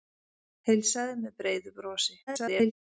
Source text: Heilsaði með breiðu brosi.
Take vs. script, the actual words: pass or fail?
fail